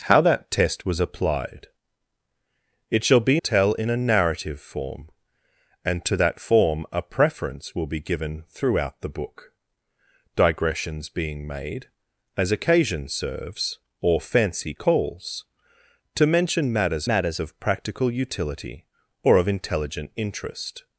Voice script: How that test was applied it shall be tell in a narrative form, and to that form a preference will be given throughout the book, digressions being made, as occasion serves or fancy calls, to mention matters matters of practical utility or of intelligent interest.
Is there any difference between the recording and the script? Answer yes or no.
no